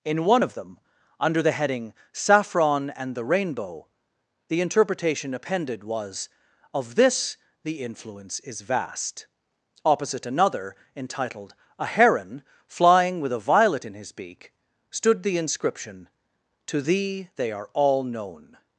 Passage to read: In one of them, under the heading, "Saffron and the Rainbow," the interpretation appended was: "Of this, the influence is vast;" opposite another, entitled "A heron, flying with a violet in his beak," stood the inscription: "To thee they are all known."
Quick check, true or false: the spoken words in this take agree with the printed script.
true